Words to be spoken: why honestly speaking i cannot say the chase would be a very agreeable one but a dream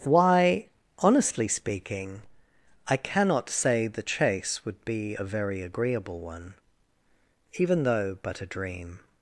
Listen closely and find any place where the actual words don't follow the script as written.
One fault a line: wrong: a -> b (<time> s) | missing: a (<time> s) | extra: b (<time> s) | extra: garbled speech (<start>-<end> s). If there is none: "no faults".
extra: even though (7.6 s)